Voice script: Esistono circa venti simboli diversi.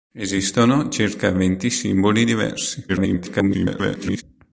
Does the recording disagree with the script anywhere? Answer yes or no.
yes